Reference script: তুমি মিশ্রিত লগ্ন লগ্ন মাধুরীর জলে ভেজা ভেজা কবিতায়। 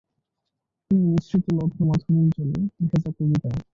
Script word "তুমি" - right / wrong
right